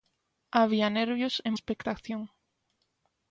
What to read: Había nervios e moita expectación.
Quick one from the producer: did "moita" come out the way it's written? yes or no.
no